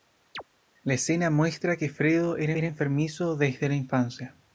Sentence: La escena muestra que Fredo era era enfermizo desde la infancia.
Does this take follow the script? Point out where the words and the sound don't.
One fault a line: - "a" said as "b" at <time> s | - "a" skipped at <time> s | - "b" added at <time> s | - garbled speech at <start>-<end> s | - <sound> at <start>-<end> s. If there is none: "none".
- chirp at 0.3-0.4 s